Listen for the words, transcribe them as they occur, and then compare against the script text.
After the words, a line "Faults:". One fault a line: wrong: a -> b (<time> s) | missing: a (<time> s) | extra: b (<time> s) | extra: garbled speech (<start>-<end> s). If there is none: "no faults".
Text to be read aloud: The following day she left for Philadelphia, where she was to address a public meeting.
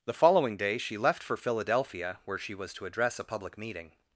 The following day she left for Philadelphia, where she was to address a public meeting.
Faults:
no faults